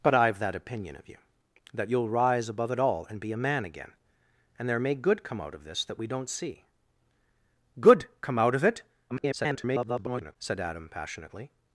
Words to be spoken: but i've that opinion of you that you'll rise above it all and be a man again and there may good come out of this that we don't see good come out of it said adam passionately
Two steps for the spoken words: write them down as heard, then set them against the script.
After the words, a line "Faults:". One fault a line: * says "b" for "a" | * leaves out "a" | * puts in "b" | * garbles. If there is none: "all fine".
but i've that opinion of you that you'll rise above it all and be a man again and there may good come out of this that we don't see good come out of it [garbled] said adam passionately
Faults:
* garbles